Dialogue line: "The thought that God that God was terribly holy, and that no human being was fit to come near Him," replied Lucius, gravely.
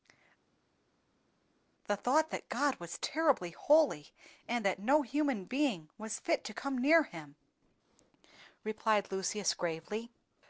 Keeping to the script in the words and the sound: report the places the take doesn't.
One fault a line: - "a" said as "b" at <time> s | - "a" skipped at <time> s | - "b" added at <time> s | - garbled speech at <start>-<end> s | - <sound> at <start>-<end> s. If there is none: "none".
- "that God" skipped at 2.7 s